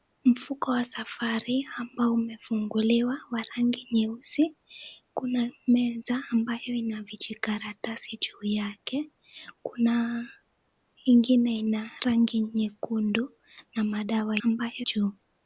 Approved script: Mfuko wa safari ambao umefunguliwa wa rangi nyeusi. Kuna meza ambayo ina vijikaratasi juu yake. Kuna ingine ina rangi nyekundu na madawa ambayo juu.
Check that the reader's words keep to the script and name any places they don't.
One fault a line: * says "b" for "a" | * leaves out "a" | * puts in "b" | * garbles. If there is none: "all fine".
all fine